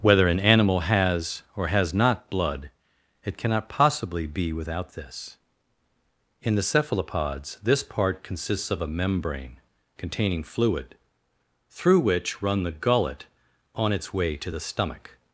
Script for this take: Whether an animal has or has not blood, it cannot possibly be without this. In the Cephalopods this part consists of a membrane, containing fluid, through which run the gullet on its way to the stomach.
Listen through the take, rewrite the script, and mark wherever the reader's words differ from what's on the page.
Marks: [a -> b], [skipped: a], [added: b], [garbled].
Whether an animal has or has not blood, it cannot possibly be without this. In the Cephalopods this part consists of a membrane, containing fluid, through which run the gullet on its way to the stomach.